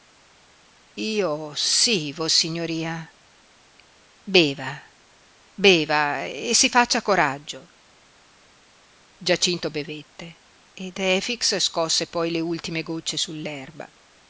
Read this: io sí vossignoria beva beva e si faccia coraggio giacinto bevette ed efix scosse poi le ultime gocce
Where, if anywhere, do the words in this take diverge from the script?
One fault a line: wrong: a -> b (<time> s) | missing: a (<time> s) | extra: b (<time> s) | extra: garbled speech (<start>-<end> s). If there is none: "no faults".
no faults